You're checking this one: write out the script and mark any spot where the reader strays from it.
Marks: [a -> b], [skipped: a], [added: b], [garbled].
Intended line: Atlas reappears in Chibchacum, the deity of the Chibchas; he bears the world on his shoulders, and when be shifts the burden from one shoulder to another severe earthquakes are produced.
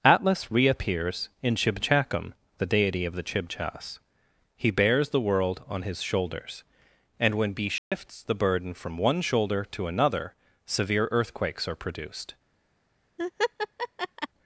Atlas reappears in Chibchacum, the deity of the Chibchas; he bears the world on his shoulders, and when be shifts the burden from one shoulder to another severe earthquakes are produced.